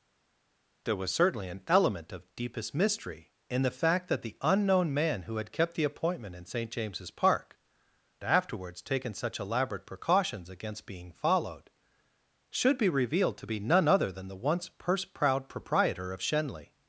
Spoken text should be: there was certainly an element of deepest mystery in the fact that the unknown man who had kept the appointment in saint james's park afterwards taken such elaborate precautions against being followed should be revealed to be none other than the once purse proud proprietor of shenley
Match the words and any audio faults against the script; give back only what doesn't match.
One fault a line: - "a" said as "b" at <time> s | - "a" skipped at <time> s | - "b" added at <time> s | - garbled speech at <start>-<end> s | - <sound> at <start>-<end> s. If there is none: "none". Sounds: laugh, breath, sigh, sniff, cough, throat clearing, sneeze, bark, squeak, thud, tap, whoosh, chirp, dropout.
none